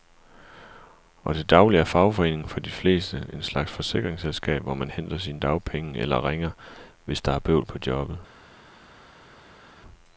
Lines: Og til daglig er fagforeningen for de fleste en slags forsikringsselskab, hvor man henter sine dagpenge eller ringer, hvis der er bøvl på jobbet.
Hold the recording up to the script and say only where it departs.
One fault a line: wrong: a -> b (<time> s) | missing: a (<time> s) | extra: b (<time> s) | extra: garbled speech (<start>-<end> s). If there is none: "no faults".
no faults